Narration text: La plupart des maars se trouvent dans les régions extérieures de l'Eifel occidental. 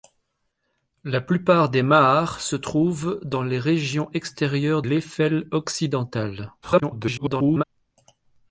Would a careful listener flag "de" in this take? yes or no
yes